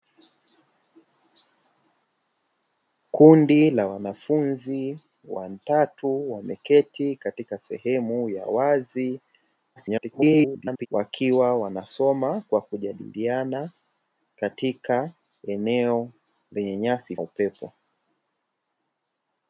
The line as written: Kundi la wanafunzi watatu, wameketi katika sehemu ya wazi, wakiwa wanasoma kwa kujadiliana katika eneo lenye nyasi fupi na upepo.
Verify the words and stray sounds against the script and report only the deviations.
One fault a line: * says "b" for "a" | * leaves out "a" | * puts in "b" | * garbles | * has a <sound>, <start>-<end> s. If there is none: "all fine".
* garbles
* leaves out "fupi na"